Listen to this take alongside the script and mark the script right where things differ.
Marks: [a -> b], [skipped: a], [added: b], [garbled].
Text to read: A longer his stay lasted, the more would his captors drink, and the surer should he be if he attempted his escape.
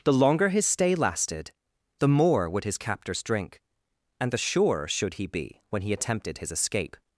[A -> The] longer his stay lasted, the more would his captors drink, and the surer should he be [if -> when] he attempted his escape.